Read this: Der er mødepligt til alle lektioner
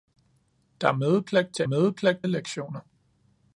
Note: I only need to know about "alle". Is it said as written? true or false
false